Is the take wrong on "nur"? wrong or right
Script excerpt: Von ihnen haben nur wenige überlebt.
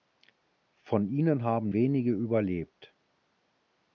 wrong